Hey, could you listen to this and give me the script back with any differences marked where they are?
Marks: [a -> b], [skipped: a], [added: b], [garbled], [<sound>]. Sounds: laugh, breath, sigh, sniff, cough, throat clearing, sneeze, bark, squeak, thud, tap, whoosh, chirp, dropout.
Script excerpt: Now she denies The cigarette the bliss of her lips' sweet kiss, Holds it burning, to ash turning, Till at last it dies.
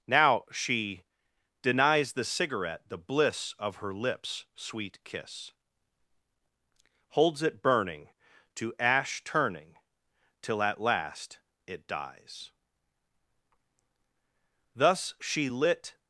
Now she denies The cigarette the bliss of her lips' sweet kiss, Holds it burning, to ash turning, Till at last it dies. [added: Thus she lit]